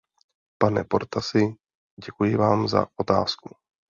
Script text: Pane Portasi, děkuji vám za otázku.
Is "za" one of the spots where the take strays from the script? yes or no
no